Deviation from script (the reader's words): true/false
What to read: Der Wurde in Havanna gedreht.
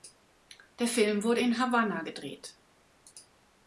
true